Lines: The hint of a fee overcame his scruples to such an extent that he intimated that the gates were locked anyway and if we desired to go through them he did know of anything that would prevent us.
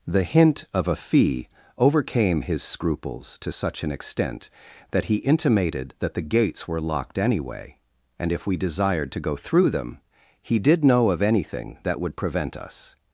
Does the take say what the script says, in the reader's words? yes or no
yes